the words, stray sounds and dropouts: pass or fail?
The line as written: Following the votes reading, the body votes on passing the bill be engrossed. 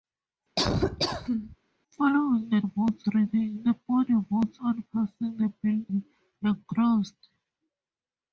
fail